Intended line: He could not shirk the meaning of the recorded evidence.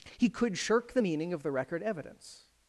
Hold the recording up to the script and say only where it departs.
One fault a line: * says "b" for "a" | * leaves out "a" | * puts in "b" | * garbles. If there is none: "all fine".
* leaves out "not"
* says "record" for "recorded"